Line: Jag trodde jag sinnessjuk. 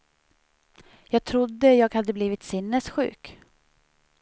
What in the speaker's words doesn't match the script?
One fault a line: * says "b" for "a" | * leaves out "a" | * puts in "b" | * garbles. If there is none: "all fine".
* puts in "hade blivit"